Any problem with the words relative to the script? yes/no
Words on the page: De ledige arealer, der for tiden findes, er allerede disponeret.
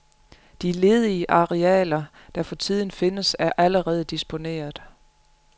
no